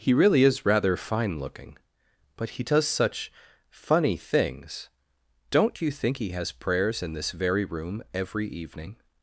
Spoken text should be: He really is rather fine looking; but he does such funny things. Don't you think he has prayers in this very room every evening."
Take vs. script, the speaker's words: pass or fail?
pass